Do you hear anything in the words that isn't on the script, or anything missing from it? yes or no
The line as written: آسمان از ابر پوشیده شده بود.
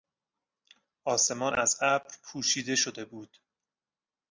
no